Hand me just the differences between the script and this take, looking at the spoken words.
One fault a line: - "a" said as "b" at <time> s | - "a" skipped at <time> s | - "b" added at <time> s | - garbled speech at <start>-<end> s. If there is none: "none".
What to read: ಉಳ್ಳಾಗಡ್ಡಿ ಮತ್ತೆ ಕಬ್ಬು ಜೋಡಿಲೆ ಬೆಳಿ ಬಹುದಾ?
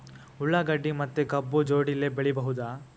none